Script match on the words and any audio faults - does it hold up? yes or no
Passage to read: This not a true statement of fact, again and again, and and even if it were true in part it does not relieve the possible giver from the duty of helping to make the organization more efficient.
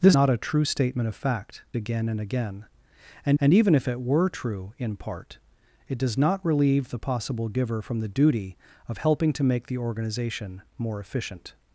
yes